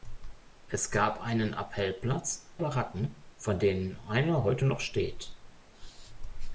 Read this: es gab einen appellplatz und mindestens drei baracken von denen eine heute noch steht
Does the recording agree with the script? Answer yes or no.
no